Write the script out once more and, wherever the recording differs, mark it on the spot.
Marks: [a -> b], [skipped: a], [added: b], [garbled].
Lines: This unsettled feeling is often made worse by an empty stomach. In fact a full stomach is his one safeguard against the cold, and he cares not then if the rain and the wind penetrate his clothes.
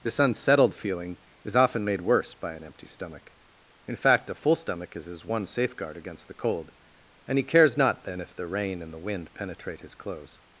This unsettled feeling is often made worse by an empty stomach. In fact a full stomach is his one safeguard against the cold, and he cares not then if the rain and the wind penetrate his clothes.